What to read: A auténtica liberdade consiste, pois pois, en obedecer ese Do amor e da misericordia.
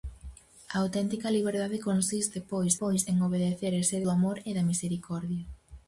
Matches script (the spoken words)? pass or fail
pass